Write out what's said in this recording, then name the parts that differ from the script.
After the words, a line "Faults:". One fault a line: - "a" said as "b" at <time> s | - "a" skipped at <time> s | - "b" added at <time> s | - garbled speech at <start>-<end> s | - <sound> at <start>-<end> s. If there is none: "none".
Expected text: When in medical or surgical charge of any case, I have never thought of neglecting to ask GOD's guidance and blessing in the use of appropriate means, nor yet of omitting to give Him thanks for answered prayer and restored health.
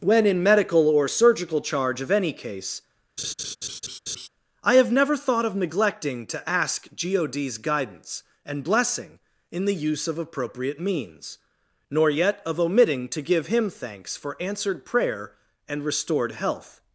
When in medical or surgical charge of any case, I have never thought of neglecting to ask GOD's guidance and blessing in the use of appropriate means, nor yet of omitting to give Him thanks for answered prayer and restored health.
Faults:
- laugh at 3.2-4.3 s